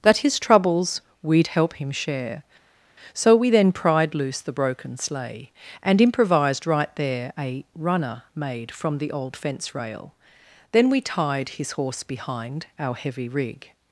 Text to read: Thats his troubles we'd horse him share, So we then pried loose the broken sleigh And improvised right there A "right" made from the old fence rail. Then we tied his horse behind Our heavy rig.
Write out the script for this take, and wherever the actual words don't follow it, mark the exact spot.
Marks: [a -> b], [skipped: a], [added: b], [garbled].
[Thats -> That] his troubles we'd [horse -> help] him share, So we then pried loose the broken sleigh And improvised right there A ["right" -> runner] made from the old fence rail. Then we tied his horse behind Our heavy rig.